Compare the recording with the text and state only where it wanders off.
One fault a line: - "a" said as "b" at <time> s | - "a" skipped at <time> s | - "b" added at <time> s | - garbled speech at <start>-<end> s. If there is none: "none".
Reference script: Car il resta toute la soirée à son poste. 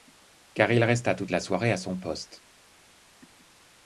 none